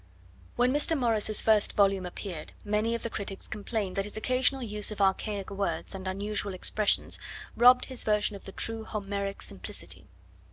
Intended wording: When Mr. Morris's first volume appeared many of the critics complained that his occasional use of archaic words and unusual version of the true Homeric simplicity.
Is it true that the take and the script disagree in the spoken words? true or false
true